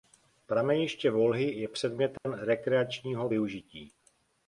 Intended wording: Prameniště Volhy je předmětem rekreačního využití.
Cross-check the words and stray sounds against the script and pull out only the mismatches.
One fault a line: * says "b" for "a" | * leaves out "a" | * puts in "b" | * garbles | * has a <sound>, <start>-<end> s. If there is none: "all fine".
* has a dropout, 2.2-2.2 s